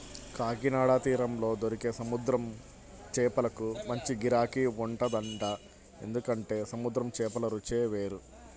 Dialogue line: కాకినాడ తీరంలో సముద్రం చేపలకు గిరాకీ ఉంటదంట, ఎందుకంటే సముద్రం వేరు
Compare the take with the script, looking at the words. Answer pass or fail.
fail